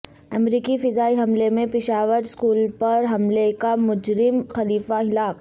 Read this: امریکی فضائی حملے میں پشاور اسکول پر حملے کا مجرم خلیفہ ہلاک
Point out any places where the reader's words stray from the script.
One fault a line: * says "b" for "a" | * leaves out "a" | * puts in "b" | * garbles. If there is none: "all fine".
all fine